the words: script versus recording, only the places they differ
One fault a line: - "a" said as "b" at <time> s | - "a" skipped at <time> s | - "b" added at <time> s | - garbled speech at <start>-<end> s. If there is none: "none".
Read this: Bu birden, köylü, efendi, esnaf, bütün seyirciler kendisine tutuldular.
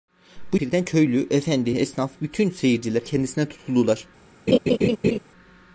none